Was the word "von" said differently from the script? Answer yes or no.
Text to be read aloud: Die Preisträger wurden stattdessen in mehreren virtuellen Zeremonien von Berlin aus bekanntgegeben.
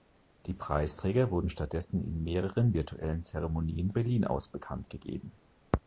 yes